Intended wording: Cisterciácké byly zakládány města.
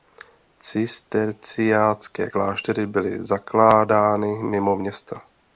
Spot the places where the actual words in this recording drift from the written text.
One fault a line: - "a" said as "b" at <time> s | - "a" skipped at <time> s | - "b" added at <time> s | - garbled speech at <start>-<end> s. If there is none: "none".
- "kláštery" added at 2.3 s
- "mimo" added at 4.4 s